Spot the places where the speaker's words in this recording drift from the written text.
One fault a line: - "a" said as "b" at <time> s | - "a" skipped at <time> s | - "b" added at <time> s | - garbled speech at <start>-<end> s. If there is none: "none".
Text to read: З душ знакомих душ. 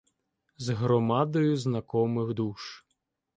- "душ" said as "громадою" at 0.7 s